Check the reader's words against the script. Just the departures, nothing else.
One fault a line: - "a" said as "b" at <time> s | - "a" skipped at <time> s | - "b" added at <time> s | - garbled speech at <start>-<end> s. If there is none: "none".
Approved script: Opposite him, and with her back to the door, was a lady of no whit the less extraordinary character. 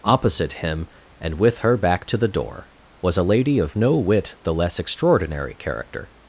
none